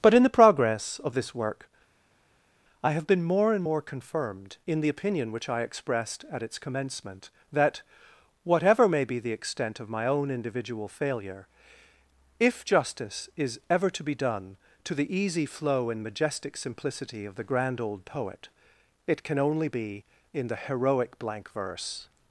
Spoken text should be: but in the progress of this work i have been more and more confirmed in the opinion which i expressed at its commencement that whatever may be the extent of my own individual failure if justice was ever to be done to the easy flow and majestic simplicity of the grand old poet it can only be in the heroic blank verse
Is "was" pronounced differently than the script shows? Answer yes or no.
yes